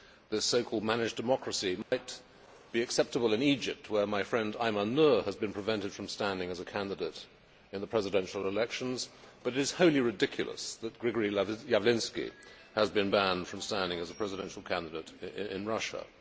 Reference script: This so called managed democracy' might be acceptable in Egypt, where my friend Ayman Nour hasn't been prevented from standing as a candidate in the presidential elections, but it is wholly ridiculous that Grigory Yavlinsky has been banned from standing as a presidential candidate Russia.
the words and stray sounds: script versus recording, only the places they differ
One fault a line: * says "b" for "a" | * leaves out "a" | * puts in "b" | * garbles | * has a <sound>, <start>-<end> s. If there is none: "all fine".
* has a dropout, 1.8-1.9 s
* says "has" for "hasn't"
* puts in "in"